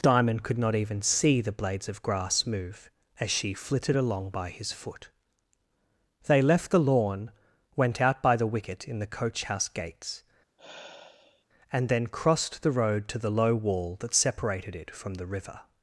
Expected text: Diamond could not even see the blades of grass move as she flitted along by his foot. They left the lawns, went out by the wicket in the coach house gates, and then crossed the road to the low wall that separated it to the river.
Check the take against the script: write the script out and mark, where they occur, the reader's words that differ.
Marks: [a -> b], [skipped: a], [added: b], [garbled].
Diamond could not even see the blades of grass move as she flitted along by his foot. They left the [lawns, -> lawn] went out by the wicket in the coach house gates, and then crossed the road to the low wall that separated it [to -> from] the river.